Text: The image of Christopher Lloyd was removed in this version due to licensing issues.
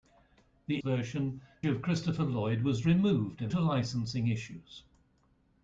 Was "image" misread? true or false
true